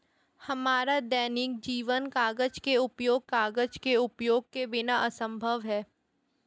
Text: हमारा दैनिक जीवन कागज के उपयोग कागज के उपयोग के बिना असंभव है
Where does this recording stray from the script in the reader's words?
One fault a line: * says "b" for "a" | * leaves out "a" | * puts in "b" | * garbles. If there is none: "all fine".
all fine